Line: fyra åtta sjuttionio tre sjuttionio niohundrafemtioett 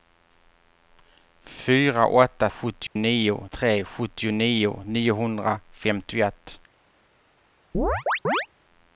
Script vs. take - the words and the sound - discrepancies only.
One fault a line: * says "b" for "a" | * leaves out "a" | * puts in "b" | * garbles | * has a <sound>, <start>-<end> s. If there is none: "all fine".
* has a dropout, 2.9-3.0 s
* has a chirp, 7.7-8.5 s